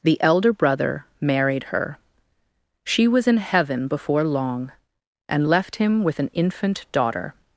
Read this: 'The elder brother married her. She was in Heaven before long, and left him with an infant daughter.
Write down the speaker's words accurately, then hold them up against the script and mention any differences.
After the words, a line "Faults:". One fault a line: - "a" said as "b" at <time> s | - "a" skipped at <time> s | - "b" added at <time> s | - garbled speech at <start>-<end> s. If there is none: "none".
'The elder brother married her. She was in Heaven before long, and left him with an infant daughter.
Faults:
none